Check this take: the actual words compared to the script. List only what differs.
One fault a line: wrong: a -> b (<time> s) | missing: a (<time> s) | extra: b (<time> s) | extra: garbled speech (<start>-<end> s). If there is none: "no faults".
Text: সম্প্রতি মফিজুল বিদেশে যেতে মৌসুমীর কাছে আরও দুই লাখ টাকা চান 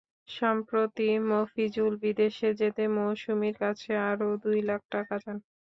no faults